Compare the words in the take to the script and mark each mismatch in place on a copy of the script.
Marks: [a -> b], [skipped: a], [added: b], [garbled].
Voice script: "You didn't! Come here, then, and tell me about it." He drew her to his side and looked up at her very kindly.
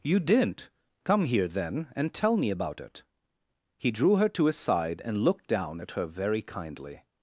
"You didn't! Come here, then, and tell me about it." He drew her to his side and looked [up -> down] at her very kindly.